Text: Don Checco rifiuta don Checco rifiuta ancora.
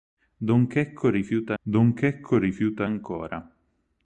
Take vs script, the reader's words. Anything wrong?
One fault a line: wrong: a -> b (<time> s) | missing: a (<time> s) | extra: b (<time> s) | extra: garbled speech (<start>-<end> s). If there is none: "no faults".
no faults